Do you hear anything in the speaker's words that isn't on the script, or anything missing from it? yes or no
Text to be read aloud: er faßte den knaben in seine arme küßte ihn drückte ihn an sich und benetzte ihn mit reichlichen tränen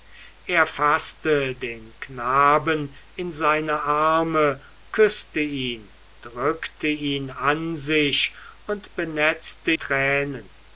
yes